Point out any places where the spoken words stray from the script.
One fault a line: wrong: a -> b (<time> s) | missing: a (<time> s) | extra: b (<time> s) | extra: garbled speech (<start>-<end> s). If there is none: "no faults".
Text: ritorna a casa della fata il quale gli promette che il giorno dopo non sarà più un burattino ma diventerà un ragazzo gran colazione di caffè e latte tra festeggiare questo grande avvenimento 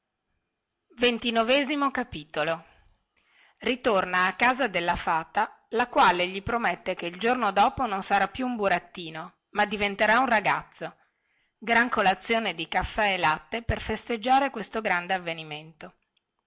wrong: il -> la (5.7 s)
wrong: tra -> per (13.6 s)